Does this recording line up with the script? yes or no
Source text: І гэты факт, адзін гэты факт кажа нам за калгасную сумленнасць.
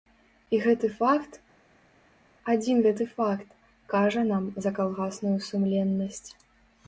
yes